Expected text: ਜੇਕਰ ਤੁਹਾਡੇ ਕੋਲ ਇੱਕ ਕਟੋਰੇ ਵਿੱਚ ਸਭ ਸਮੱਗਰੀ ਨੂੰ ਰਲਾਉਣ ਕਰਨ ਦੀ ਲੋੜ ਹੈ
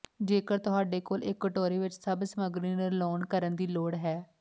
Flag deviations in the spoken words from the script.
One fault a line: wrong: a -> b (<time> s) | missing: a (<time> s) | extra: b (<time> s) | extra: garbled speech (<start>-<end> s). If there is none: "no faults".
no faults